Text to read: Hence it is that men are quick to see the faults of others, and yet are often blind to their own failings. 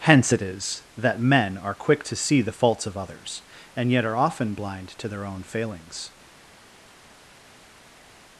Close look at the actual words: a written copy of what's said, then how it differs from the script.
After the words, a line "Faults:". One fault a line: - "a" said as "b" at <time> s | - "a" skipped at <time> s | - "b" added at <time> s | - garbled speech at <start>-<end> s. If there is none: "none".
Hence it is that men are quick to see the faults of others, and yet are often blind to their own failings.
Faults:
none